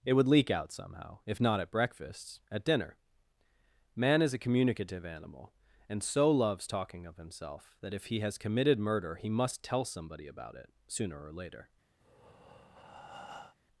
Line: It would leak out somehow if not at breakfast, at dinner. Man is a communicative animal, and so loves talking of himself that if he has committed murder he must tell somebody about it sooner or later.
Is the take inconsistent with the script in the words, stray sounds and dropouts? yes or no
yes